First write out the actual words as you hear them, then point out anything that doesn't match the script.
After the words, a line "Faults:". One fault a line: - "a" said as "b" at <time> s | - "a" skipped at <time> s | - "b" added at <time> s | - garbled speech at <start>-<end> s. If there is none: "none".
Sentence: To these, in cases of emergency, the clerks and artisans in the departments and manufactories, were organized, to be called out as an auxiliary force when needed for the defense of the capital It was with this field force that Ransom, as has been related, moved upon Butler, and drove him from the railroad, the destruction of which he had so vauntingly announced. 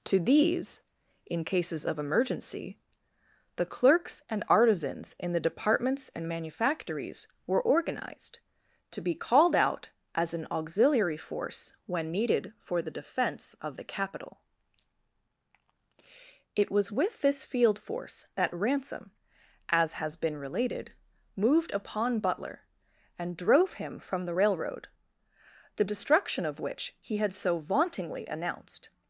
To these, in cases of emergency, the clerks and artisans in the departments and manufactories, were organized, to be called out as an auxiliary force when needed for the defense of the capital It was with this field force that Ransom, as has been related, moved upon Butler, and drove him from the railroad, the destruction of which he had so vauntingly announced.
Faults:
none